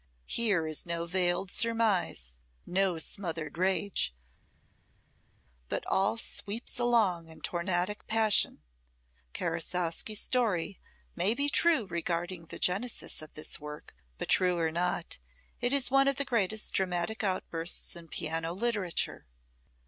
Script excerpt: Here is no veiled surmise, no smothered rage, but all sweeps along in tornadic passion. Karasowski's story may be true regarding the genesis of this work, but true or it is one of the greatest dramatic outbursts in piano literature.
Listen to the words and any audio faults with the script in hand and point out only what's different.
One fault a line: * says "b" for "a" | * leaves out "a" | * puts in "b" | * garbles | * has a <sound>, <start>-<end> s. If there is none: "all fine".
* puts in "not"